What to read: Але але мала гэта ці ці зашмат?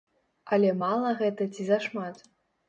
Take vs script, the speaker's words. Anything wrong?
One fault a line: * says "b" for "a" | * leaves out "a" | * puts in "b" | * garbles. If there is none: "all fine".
* leaves out "але"
* leaves out "ці"